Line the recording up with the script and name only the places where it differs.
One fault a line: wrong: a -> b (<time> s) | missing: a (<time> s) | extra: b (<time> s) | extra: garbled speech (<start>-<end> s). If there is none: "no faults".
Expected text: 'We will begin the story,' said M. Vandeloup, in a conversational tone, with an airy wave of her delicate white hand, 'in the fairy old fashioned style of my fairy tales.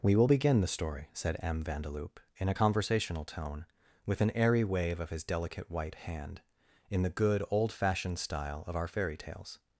wrong: her -> his (5.1 s)
wrong: fairy -> good (7.1 s)
wrong: my -> our (8.8 s)